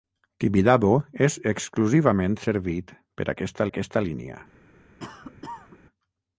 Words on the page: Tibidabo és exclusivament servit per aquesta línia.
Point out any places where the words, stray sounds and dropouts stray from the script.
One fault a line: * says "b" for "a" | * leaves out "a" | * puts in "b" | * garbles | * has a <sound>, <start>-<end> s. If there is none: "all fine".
* puts in "aquesta"
* has a cough, 5.0-5.8 s